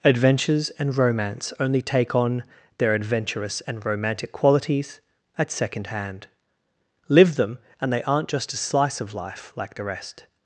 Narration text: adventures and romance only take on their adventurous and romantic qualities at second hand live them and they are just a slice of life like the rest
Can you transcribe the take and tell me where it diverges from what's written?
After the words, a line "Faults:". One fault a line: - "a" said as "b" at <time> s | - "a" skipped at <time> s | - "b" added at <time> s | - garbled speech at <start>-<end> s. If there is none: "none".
adventures and romance only take on their adventurous and romantic qualities at second hand live them and they aren't just a slice of life like the rest
Faults:
- "are" said as "aren't" at 8.0 s